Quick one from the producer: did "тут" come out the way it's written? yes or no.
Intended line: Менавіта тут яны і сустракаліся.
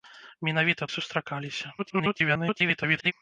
no